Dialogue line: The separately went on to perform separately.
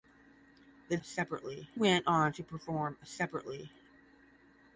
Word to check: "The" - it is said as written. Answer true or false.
true